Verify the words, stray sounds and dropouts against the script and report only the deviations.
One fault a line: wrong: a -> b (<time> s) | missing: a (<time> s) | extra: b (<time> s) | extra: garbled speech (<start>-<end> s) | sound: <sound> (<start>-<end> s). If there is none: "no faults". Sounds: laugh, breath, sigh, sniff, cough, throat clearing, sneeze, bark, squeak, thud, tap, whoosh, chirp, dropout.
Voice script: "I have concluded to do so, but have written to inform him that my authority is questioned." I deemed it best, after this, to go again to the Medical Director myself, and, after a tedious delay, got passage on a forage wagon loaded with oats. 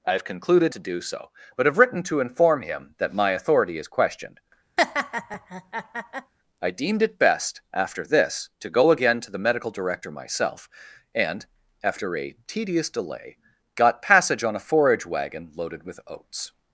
sound: laugh (4.8-6.3 s)